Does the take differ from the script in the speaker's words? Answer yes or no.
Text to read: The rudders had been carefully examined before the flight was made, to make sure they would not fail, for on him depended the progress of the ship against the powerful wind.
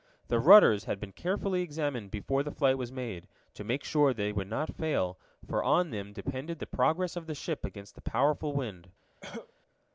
yes